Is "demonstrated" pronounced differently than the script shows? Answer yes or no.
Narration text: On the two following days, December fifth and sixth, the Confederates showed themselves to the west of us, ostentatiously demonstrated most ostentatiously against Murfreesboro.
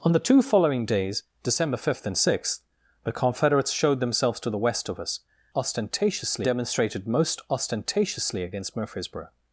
no